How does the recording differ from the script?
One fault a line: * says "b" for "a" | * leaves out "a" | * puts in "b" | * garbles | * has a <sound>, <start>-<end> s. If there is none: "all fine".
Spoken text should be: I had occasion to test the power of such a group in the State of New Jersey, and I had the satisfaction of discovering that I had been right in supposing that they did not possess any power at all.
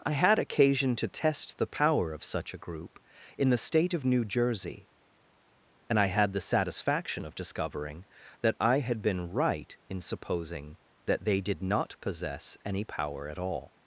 all fine